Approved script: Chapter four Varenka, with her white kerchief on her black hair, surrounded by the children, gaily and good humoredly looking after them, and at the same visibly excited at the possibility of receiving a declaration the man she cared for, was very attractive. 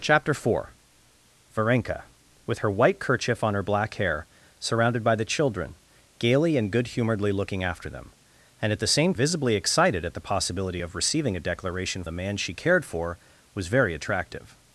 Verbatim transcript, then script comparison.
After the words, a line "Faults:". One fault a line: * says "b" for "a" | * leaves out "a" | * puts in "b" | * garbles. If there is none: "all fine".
Chapter four Varenka, with her white kerchief on her black hair, surrounded by the children, gaily and good humoredly looking after them, and at the same visibly excited at the possibility of receiving a declaration the man she cared for, was very attractive.
Faults:
all fine